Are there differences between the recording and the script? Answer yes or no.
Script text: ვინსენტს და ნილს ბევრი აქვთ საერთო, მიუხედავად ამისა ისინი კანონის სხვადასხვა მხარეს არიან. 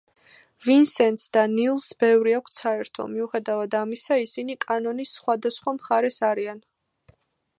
no